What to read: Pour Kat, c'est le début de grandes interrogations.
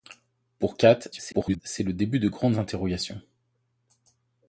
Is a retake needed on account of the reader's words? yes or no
yes